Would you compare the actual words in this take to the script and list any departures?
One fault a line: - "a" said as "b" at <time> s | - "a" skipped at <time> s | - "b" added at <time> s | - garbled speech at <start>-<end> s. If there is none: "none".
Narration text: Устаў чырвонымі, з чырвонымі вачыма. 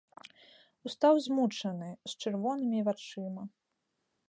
- "чырвонымі" said as "змучаны" at 1.2 s